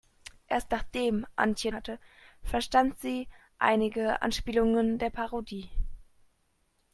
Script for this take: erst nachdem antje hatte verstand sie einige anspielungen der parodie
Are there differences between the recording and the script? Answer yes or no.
no